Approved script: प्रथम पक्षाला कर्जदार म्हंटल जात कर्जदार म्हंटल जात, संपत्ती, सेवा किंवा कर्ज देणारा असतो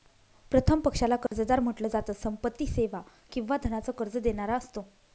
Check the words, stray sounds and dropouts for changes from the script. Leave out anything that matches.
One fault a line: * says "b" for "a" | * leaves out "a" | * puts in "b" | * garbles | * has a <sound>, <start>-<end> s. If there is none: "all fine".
* has a dropout, 1.3-1.3 s
* leaves out "कर्जदार म्हंटल जात"
* puts in "धनाच"